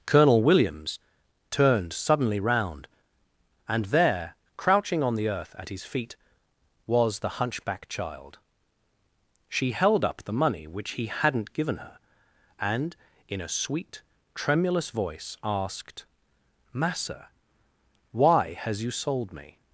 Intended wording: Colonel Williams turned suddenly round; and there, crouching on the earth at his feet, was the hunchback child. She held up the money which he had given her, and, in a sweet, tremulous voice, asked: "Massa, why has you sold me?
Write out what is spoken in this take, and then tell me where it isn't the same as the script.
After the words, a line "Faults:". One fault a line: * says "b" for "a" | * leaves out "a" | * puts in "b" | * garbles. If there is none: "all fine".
Colonel Williams turned suddenly round; and there, crouching on the earth at his feet, was the hunchback child. She held up the money which he hadn't given her, and, in a sweet, tremulous voice, asked: "Massa, why has you sold me?
Faults:
* says "hadn't" for "had"